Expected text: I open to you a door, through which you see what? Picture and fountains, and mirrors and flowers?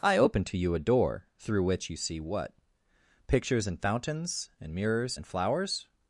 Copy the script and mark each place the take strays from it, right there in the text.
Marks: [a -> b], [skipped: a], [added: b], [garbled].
I open to you a door, through which you see what? [Picture -> Pictures] and fountains, and mirrors and flowers?